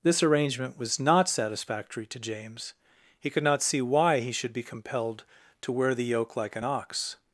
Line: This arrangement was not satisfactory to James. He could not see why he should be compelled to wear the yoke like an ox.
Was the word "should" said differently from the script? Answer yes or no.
no